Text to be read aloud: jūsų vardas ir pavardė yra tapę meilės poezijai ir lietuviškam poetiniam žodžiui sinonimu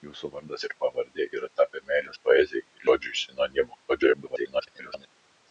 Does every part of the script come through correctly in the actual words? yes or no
no